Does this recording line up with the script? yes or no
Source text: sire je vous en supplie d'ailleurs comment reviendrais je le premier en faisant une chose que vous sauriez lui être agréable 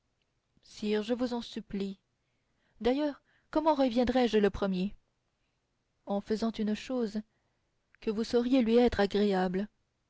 yes